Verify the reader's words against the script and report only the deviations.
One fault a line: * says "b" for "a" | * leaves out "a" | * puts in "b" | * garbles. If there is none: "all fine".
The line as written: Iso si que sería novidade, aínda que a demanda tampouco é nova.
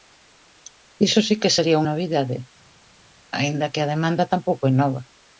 all fine